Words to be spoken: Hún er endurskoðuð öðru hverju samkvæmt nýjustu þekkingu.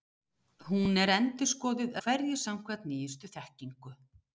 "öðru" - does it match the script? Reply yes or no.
no